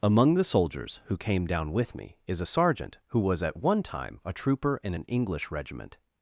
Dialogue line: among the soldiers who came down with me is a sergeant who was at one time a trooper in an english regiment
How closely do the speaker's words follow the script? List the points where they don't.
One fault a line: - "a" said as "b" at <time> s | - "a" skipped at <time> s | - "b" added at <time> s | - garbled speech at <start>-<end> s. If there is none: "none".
none